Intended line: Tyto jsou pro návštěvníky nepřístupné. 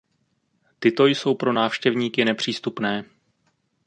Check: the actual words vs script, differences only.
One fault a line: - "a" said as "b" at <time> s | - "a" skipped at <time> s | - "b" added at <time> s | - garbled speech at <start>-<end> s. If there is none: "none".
none